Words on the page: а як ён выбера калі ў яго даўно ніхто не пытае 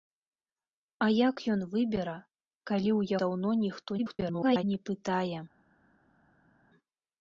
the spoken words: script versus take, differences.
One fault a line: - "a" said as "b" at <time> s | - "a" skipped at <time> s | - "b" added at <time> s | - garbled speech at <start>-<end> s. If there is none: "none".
- "яго" skipped at 3.1 s
- garbled speech at 4.0-4.6 s